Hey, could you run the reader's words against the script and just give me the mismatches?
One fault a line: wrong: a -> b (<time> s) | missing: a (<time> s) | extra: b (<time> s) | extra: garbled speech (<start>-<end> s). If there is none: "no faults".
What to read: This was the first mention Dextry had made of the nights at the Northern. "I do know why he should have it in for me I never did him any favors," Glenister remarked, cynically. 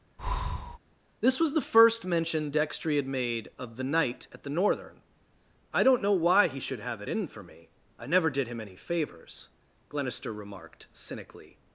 wrong: nights -> night (3.8 s)
wrong: do -> don't (5.8 s)